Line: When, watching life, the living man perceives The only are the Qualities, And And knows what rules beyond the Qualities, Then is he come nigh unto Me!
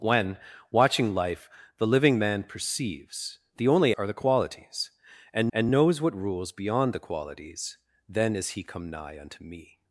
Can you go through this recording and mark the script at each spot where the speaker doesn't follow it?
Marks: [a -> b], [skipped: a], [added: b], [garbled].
When, watching life, the living man perceives The only are the Qualities, And And knows what rules beyond the Qualities, Then is he come nigh unto Me!